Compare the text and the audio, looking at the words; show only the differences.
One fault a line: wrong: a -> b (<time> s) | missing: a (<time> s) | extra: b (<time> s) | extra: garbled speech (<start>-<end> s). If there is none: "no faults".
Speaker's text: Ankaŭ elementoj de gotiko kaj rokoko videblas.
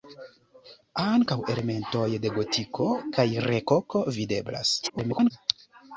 extra: garbled speech (4.8-5.3 s)